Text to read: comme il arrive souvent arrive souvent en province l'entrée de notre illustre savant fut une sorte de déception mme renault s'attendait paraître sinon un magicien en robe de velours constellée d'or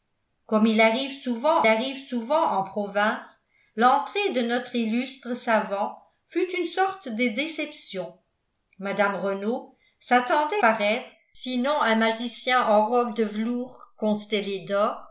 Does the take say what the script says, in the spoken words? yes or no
yes